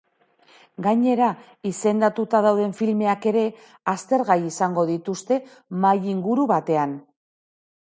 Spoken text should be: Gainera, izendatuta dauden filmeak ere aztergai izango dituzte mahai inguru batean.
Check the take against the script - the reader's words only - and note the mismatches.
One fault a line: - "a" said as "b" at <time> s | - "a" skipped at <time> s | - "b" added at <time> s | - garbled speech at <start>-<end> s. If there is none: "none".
none